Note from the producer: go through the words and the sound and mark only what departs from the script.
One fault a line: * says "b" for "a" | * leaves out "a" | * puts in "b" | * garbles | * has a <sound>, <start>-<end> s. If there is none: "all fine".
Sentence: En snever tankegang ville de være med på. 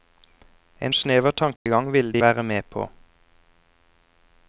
* has a dropout, 1.6-1.7 s